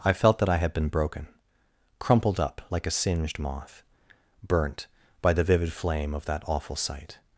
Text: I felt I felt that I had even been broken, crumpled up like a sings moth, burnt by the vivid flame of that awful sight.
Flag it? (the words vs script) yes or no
yes